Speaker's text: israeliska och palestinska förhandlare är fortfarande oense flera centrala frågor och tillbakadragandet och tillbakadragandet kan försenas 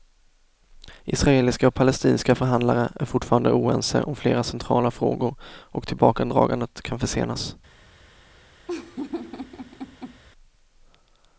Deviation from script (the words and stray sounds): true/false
true